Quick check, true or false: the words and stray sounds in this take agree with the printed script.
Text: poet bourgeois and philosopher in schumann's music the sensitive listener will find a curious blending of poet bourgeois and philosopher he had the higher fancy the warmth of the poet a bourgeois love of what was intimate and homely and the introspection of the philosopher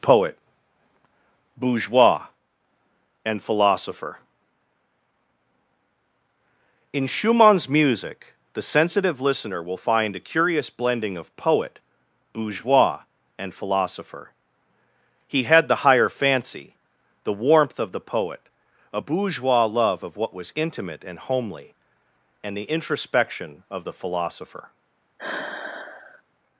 false